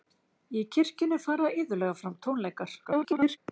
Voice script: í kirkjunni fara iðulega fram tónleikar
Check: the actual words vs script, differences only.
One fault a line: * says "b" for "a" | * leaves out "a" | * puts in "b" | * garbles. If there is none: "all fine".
* garbles